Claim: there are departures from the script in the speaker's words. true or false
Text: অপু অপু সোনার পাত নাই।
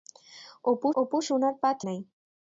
false